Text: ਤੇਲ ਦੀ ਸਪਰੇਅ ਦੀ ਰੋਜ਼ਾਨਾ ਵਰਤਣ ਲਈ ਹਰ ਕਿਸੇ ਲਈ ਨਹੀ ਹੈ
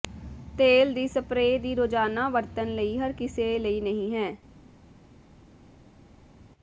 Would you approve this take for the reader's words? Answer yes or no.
yes